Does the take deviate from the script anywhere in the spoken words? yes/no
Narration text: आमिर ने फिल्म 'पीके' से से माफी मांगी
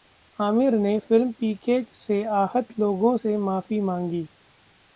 yes